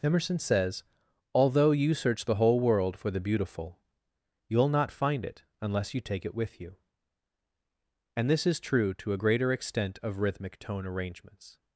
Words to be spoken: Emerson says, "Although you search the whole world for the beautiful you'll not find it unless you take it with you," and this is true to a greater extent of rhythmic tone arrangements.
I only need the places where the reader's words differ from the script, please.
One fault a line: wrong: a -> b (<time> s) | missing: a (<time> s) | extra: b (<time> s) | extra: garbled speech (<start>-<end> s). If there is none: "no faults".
no faults